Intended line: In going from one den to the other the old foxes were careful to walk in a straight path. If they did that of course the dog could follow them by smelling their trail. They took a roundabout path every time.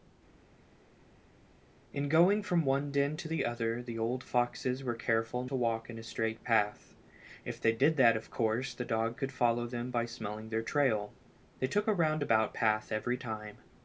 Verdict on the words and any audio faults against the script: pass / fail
pass